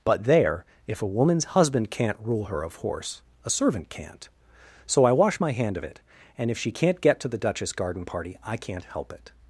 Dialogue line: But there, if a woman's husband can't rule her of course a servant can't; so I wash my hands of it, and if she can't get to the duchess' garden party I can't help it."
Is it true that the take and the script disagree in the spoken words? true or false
true